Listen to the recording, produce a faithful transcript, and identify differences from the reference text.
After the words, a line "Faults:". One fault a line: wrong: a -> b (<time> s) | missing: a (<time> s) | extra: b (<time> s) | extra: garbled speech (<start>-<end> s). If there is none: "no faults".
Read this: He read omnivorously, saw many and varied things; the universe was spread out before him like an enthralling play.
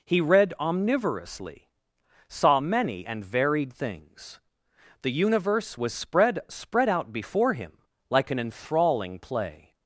He read omnivorously, saw many and varied things; the universe was spread spread out before him like an enthralling play.
Faults:
extra: spread (6.5 s)